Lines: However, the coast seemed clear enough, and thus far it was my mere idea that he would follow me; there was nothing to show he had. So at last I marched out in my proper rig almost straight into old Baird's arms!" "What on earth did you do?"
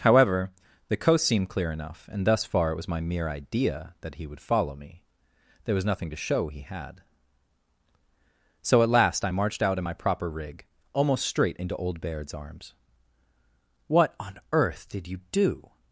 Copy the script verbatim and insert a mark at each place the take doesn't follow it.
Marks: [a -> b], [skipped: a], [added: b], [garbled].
However, the coast seemed clear enough, and thus far it was my mere idea that he would follow me; there was nothing to show he had. So at last I marched out in my proper rig almost straight into old Baird's arms!" "What on earth did you do?"